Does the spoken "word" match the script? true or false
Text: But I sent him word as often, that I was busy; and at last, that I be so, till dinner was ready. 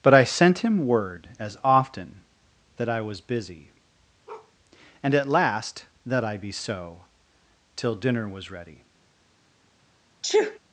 true